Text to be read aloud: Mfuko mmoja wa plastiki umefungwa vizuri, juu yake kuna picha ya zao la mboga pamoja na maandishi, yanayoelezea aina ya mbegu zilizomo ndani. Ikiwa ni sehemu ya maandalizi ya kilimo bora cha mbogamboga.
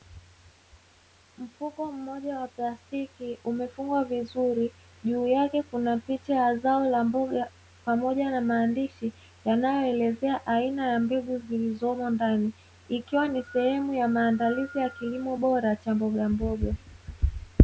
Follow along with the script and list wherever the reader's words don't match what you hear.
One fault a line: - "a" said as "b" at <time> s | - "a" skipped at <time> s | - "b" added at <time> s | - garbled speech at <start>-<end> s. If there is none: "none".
none